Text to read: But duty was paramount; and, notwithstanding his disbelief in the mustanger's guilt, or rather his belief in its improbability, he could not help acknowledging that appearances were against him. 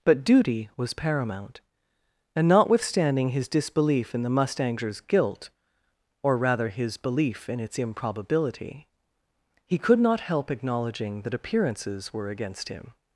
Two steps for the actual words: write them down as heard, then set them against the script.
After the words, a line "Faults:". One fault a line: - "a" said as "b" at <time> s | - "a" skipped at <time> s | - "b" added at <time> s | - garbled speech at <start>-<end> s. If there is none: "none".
But duty was paramount; and, notwithstanding his disbelief in the mustanger's guilt, or rather his belief in its improbability, he could not help acknowledging that appearances were against him.
Faults:
none